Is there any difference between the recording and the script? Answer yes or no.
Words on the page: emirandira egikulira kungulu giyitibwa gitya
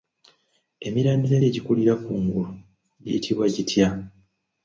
no